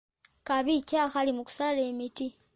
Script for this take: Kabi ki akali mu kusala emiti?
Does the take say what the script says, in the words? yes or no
yes